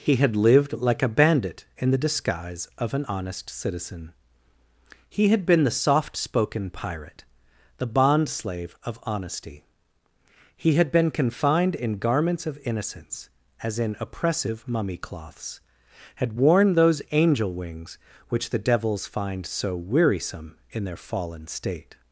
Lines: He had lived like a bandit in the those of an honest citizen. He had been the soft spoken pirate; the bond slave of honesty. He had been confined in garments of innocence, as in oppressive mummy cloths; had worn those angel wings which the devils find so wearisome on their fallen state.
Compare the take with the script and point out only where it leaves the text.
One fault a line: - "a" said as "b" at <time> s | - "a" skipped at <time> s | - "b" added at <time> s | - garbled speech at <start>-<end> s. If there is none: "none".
- "those" said as "disguise" at 2.0 s
- "on" said as "in" at 20.7 s